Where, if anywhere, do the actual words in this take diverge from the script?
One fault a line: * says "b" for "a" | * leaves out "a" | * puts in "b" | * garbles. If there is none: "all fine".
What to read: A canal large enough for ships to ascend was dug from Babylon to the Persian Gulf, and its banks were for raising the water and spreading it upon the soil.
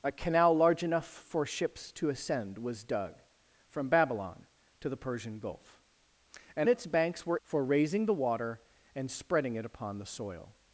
all fine